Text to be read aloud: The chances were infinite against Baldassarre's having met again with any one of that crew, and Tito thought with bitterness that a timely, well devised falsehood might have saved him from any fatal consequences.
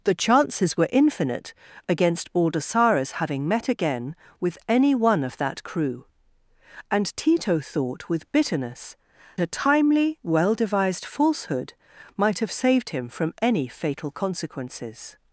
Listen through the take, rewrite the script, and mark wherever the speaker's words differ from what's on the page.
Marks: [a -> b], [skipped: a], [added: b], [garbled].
The chances were infinite against Baldassarre's having met again with any one of that crew, and Tito thought with bitterness [skipped: that] a timely, well devised falsehood might have saved him from any fatal consequences.